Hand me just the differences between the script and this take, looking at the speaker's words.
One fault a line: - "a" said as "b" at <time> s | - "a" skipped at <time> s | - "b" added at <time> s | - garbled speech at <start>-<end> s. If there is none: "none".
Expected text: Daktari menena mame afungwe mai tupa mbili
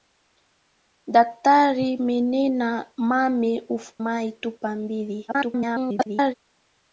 - "afungwe" skipped at 3.5 s
- garbled speech at 5.3-6.3 s